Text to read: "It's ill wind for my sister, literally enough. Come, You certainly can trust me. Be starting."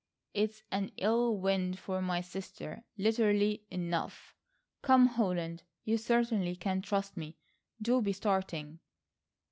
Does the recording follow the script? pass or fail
fail